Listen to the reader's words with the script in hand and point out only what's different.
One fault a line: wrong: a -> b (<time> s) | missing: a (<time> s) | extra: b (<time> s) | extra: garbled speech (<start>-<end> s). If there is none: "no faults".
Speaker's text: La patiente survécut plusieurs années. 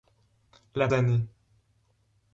missing: patiente survécut plusieurs (0.9 s)